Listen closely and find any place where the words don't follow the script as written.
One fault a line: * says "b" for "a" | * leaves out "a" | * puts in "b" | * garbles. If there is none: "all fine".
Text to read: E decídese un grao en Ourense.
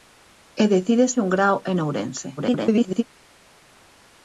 * garbles